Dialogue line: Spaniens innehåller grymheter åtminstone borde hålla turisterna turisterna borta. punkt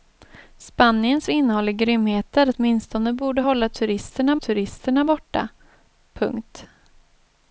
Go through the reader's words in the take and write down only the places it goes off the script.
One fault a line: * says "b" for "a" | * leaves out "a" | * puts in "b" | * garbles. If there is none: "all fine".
all fine